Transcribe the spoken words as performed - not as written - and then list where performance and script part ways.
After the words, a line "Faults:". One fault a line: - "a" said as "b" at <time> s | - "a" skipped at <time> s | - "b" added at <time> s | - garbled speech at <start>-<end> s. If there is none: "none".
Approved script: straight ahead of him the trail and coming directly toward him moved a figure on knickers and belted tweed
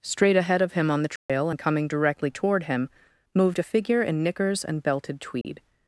straight ahead of him on the trail and coming directly toward him moved a figure in knickers and belted tweed
Faults:
- "on" added at 0.9 s
- "on" said as "in" at 4.0 s